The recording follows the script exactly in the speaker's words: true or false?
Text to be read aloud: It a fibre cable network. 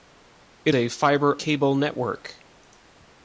true